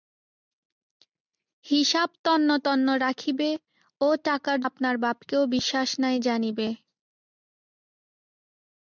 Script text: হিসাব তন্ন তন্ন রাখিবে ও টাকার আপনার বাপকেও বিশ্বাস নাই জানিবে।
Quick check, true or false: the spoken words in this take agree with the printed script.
true